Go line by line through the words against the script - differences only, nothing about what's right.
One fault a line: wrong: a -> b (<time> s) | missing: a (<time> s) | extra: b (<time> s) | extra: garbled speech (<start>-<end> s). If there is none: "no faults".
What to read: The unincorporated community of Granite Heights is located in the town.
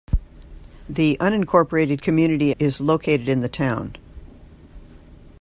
missing: of Granite Heights (2.5 s)